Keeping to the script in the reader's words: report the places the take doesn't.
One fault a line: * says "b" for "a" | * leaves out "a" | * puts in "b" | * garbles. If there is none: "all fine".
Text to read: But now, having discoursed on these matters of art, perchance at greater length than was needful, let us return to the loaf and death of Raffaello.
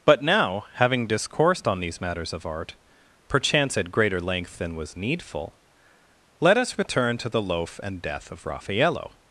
all fine